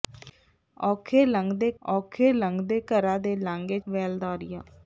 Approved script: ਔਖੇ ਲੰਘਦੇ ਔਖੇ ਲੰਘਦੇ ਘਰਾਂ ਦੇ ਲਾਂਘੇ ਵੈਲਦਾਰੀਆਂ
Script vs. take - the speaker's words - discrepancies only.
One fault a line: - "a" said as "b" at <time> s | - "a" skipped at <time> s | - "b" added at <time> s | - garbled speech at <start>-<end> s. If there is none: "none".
none